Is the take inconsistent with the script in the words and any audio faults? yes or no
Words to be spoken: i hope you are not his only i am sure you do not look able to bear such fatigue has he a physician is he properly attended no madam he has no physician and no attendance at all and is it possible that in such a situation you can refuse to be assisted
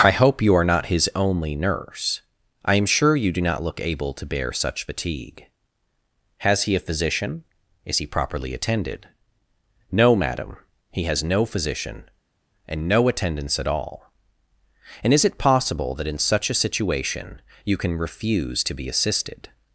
yes